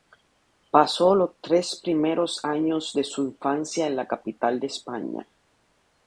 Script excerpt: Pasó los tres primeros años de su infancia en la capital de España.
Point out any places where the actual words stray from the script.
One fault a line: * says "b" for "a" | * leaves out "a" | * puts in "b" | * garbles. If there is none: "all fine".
all fine